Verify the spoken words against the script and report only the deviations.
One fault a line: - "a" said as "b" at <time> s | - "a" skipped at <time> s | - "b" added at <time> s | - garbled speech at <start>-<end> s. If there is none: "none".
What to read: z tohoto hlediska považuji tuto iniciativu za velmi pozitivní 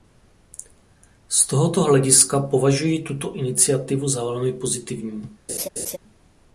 none